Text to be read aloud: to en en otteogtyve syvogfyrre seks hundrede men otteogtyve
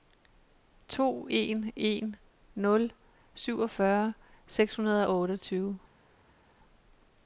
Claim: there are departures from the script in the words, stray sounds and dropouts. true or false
true